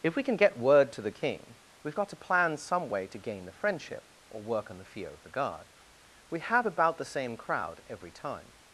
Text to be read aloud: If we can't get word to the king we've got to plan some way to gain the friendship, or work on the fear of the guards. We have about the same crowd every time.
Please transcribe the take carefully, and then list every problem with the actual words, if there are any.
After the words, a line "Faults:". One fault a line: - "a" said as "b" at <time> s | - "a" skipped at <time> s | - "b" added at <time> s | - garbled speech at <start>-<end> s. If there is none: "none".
If we can get word to the king we've got to plan some way to gain the friendship, or work on the fear of the guard. We have about the same crowd every time.
Faults:
- "can't" said as "can" at 0.2 s
- "guards" said as "guard" at 5.3 s